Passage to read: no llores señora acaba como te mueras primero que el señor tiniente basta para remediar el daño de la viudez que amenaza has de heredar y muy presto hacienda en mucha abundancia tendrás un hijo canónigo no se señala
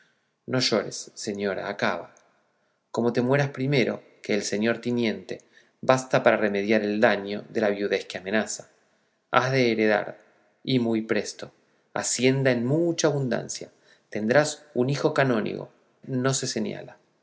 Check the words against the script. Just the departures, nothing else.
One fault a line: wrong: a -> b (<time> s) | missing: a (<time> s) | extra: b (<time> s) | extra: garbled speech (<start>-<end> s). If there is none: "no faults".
no faults